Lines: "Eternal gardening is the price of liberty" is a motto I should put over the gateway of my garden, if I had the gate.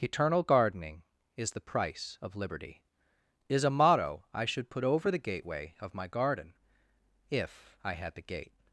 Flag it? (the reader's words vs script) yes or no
no